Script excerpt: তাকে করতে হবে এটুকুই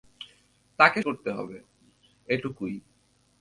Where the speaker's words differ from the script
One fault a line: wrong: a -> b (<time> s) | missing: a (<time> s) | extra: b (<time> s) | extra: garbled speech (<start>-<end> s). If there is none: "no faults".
no faults